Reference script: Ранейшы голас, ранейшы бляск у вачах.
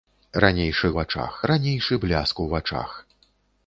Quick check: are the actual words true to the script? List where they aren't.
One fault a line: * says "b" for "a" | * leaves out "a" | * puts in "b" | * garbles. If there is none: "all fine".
* says "вачах" for "голас"